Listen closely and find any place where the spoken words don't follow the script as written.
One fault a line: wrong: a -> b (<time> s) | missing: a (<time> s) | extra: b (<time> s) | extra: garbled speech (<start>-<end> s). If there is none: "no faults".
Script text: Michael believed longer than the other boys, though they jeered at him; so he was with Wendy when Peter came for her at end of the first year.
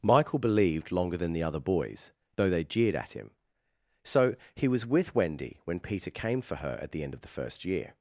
extra: the (6.9 s)